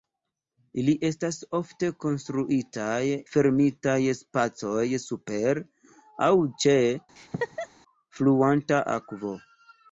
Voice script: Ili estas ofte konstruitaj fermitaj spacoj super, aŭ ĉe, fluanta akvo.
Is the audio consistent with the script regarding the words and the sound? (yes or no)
no